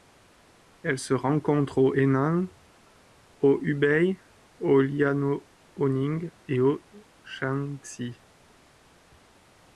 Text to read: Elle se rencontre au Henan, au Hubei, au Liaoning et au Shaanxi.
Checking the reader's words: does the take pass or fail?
pass